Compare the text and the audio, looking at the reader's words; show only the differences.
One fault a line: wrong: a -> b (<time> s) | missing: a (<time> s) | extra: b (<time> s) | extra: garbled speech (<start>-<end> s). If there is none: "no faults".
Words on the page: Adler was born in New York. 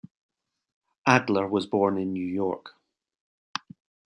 no faults